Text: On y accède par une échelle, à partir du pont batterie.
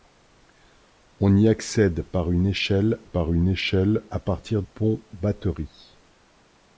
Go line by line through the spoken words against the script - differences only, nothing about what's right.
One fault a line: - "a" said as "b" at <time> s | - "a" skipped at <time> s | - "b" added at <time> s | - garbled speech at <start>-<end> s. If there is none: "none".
- "par une échelle" added at 3.0 s
- "du" skipped at 4.6 s